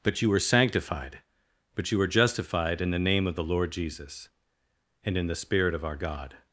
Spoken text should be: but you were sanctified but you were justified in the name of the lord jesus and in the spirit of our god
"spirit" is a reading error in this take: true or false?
false